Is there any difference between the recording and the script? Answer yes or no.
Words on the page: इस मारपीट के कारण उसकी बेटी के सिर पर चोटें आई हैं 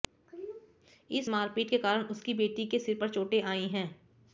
no